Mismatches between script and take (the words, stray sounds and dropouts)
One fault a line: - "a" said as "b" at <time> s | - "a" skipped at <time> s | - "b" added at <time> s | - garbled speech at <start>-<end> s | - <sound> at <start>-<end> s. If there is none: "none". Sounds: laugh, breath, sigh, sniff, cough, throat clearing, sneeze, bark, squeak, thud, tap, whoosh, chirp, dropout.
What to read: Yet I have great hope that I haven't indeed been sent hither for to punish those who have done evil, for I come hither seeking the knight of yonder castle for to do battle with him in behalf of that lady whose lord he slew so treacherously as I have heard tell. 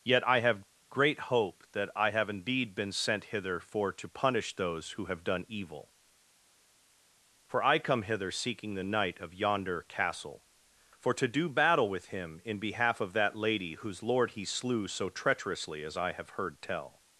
- "haven't" said as "have" at 2.1 s